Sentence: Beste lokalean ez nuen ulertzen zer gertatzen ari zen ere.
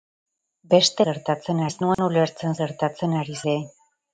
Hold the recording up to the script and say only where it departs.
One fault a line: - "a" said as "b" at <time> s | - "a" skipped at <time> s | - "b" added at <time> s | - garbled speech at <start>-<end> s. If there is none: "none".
- "lokalean" said as "gertatzen" at 1.1 s
- "zer" skipped at 2.6 s
- "zen" skipped at 3.4 s